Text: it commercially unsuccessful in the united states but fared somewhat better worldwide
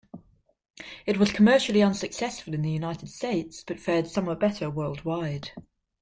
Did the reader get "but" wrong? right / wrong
right